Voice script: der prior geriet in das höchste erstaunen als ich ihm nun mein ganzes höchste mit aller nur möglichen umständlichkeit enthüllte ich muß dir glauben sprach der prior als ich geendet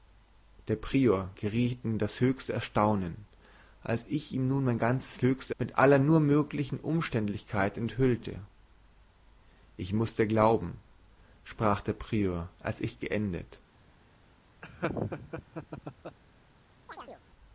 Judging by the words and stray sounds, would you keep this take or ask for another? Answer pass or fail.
fail